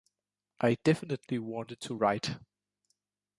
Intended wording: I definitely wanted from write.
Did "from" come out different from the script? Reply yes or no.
yes